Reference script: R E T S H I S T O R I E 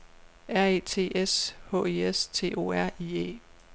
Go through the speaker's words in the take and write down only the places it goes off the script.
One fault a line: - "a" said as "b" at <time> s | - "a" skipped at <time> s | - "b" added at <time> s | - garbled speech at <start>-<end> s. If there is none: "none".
none